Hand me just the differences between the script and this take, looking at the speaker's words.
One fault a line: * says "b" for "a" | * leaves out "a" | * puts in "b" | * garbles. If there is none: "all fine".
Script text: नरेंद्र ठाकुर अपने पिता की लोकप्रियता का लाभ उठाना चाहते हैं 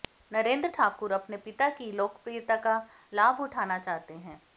all fine